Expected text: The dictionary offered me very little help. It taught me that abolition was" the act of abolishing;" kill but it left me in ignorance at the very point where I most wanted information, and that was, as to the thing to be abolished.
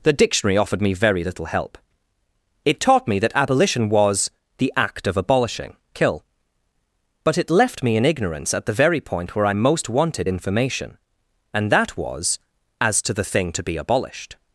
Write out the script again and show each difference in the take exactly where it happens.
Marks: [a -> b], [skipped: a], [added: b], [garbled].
The dictionary offered me very little help. It taught me that abolition was" the act of abolishing;" kill but it left me in ignorance at the very point where I most wanted information, and that was, as to the thing to be abolished.